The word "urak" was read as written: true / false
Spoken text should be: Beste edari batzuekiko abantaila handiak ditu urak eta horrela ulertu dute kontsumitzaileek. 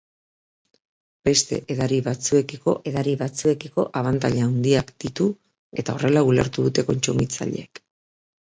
false